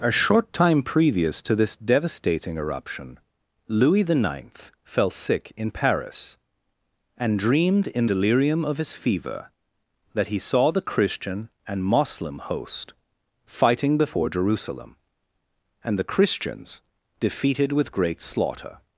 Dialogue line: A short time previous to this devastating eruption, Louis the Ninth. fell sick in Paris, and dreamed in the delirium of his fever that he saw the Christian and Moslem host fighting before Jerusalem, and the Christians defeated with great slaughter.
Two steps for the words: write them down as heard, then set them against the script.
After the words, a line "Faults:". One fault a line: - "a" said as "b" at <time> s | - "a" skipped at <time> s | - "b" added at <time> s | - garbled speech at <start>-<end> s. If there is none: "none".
A short time previous to this devastating eruption, Louis the Ninth. fell sick in Paris, and dreamed in delirium of his fever that he saw the Christian and Moslem host fighting before Jerusalem, and the Christians defeated with great slaughter.
Faults:
- "the" skipped at 8.1 s